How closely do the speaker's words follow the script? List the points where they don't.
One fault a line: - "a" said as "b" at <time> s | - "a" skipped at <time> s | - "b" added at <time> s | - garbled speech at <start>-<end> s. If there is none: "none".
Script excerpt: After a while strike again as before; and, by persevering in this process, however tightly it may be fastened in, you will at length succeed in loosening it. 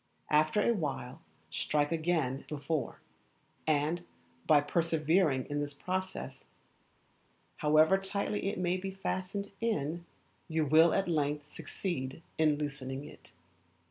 - "as" skipped at 2.4 s